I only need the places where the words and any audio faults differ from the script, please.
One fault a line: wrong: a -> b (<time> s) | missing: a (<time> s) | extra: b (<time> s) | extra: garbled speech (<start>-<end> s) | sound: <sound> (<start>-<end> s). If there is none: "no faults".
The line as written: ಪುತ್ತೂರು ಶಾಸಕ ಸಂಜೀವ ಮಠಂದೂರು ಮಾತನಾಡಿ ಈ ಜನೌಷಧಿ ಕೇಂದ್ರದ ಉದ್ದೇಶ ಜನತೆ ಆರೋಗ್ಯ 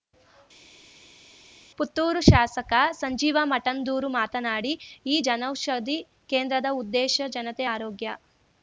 no faults